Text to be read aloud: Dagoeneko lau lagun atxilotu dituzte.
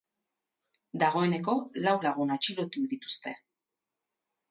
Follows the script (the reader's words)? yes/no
yes